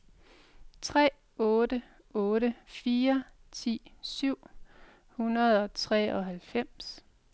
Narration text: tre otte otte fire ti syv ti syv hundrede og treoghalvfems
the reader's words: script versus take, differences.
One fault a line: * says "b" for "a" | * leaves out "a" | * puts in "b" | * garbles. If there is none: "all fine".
* leaves out "ti syv"